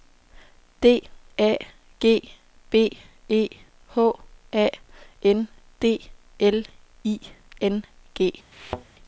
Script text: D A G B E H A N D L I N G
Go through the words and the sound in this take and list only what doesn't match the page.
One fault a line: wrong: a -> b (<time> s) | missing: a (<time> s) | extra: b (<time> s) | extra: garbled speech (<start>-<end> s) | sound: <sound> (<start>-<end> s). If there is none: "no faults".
sound: thud (8.5-8.8 s)